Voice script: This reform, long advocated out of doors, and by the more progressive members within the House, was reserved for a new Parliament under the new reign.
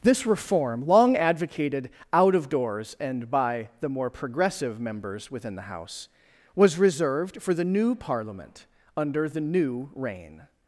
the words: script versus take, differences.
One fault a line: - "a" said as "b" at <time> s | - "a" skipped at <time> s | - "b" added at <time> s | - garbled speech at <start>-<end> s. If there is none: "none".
- "a" said as "the" at 7.5 s